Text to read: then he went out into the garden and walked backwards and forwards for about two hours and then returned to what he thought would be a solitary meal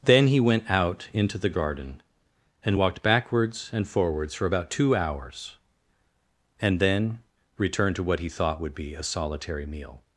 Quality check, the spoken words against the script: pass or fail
pass